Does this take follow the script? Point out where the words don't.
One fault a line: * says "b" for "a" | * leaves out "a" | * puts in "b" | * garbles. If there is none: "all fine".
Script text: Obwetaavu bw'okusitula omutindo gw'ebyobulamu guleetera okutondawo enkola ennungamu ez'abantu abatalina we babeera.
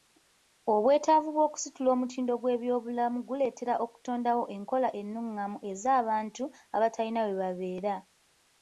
all fine